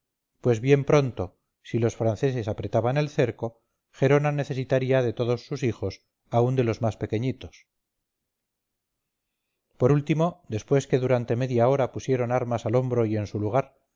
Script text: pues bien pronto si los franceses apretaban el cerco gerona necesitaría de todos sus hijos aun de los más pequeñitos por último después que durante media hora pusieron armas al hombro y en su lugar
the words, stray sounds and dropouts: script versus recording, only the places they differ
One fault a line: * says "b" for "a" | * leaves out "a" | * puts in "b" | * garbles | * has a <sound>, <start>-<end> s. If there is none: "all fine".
all fine